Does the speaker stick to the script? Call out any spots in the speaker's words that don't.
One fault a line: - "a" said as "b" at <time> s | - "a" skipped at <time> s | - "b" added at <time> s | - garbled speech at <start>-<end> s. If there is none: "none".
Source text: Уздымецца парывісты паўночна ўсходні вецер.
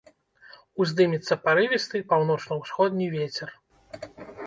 none